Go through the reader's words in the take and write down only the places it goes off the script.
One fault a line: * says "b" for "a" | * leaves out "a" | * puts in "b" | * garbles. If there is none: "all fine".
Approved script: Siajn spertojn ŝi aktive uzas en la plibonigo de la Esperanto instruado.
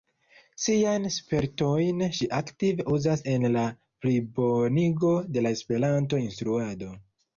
all fine